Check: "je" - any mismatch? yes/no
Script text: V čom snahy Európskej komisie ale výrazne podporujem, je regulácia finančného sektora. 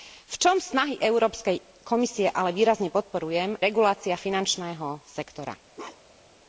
yes